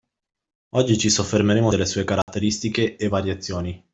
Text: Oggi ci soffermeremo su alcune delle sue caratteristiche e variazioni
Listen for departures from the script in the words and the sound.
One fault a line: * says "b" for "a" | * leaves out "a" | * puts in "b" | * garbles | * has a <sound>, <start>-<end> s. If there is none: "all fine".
* leaves out "su alcune"
* has a dropout, 2.2-2.3 s